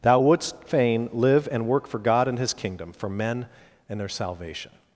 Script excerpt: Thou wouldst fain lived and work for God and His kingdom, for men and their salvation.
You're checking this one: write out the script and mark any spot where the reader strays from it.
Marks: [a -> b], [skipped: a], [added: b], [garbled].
Thou wouldst fain [lived -> live] and work for God and His kingdom, for men and their salvation.